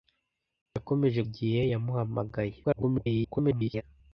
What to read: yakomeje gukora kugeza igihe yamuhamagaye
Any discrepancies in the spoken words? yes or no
yes